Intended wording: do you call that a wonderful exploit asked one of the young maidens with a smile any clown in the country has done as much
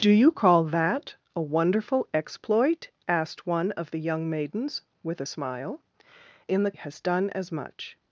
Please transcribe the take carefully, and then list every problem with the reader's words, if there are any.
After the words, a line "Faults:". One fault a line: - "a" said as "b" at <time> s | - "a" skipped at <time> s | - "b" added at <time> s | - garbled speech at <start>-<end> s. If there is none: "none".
do you call that a wonderful exploit asked one of the young maidens with a smile in the has done as much
Faults:
- "any clown" skipped at 5.8 s
- "country" skipped at 6.7 s